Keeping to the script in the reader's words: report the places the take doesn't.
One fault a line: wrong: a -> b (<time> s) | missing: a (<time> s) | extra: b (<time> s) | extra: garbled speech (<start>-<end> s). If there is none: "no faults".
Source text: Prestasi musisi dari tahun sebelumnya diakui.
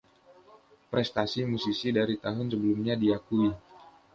no faults